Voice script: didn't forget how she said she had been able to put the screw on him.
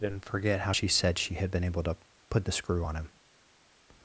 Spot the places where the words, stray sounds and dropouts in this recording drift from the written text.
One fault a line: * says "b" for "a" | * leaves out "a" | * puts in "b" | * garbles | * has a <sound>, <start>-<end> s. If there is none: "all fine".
all fine